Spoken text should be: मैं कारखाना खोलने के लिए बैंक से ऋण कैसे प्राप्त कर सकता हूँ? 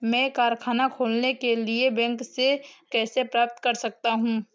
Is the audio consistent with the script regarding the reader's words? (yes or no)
no